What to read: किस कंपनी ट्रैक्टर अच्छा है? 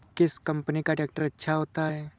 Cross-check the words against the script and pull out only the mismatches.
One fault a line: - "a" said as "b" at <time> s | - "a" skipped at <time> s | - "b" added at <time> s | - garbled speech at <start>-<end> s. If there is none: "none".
- "का" added at 0.8 s
- "होता" added at 1.5 s